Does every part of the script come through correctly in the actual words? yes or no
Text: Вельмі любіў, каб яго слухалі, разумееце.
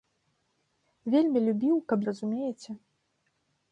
no